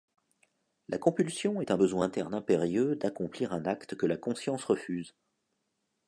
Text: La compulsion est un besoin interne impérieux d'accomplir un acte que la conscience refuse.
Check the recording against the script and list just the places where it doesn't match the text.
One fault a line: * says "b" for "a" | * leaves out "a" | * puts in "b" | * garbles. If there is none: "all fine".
all fine